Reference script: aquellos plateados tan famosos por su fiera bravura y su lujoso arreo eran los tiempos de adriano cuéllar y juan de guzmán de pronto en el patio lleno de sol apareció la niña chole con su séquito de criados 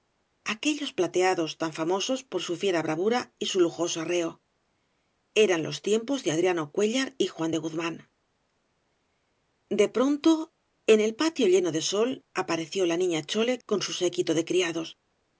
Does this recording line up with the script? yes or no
yes